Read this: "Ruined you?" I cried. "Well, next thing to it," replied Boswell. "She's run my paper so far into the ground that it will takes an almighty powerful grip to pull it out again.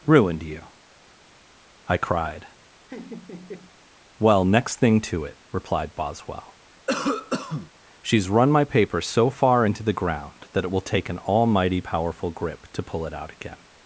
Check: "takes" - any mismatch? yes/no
yes